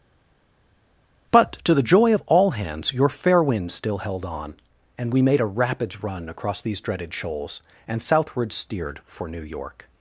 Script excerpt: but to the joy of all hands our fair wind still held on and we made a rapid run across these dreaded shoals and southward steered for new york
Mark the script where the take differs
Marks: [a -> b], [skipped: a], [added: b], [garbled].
but to the joy of all hands [our -> your] fair wind still held on and we made a [rapid -> rapids] run across these dreaded shoals and southward steered for new york